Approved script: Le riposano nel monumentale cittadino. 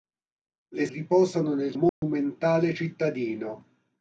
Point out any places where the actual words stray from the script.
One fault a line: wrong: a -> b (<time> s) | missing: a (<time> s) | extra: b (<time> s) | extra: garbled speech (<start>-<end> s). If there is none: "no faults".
no faults